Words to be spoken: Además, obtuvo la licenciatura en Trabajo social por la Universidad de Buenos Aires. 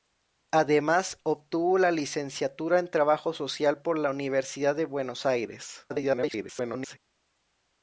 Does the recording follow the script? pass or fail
fail